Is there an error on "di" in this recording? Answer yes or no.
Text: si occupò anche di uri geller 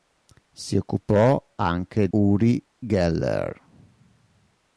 yes